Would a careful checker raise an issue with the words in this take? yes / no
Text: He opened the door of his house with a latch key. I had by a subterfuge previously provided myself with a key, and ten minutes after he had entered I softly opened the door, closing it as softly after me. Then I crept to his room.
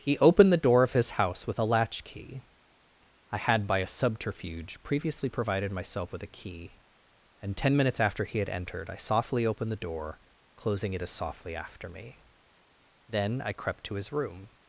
no